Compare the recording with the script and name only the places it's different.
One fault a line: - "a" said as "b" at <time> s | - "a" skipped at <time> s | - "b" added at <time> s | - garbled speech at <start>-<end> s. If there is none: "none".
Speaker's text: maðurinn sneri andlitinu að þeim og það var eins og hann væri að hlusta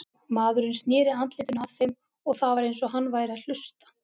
none